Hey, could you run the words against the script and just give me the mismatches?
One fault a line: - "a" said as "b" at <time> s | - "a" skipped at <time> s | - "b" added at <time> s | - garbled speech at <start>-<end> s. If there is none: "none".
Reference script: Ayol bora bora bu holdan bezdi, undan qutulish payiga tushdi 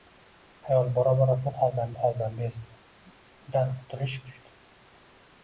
- "holdan" added at 2.0 s
- "payiga" skipped at 4.2 s